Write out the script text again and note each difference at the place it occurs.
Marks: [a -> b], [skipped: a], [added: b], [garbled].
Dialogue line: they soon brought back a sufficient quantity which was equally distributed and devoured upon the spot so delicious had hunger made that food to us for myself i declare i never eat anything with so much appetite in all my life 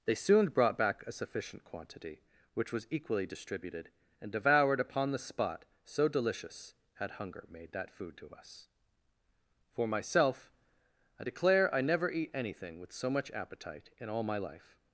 they soon brought back a sufficient quantity which was equally distributed and devoured upon the spot so delicious had hunger made that food to us for myself i declare i never eat anything with so much appetite in all my life